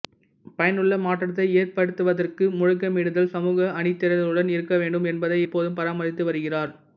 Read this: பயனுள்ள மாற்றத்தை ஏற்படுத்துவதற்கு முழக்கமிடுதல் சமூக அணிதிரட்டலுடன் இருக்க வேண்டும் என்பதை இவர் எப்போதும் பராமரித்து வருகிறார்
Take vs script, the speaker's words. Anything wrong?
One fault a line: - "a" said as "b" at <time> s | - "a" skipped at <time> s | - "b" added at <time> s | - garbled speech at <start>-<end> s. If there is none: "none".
- "இவர்" skipped at 5.4 s